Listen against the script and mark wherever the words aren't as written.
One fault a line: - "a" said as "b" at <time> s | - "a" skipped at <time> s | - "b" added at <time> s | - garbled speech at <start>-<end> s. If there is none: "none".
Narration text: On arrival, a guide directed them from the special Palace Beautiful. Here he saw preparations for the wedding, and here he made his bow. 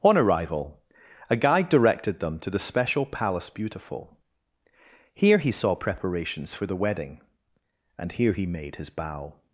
- "from" said as "to" at 2.4 s